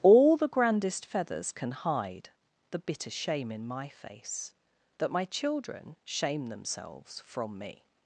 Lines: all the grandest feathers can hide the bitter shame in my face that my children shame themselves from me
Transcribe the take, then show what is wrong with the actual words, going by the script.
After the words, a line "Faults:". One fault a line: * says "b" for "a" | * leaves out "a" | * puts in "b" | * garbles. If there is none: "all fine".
all the grandest feathers can hide the bitter shame in my face that my children shame themselves from me
Faults:
all fine